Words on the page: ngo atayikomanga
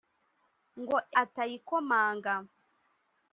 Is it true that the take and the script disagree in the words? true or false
false